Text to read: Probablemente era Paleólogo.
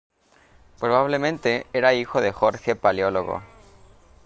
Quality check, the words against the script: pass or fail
fail